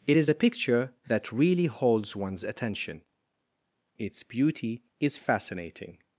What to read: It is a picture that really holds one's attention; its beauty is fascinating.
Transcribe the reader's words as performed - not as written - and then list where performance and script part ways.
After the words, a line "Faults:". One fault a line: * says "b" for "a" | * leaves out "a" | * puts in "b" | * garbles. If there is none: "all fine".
It is a picture that really holds one's attention; its beauty is fascinating.
Faults:
all fine